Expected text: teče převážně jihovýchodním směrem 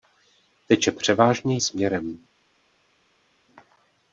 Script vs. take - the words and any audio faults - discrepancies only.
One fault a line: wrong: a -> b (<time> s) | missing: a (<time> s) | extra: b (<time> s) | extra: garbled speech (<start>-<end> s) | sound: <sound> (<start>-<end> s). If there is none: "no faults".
missing: jihovýchodním (1.6 s)